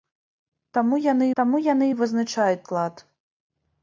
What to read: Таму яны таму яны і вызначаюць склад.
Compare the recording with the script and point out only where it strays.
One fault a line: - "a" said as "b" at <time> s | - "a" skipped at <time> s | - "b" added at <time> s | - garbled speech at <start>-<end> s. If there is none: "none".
none